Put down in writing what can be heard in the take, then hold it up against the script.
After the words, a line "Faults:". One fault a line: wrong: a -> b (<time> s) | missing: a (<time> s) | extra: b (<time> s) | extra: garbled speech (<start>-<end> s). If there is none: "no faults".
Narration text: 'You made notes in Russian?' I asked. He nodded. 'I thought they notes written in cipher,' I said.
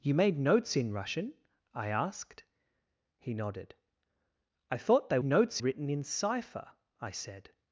'You made notes in Russian?' I asked. He nodded. 'I thought they notes written in cipher,' I said.
Faults:
no faults